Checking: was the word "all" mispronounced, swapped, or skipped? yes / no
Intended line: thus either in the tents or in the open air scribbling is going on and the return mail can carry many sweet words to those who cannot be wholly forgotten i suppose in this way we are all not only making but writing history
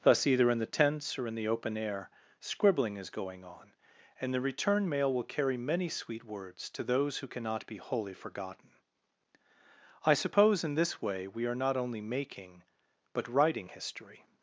yes